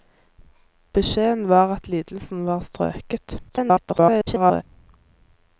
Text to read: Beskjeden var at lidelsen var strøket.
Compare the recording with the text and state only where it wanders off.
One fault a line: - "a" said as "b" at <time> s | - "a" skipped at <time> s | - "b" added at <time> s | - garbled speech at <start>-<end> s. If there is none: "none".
- garbled speech at 3.5-4.6 s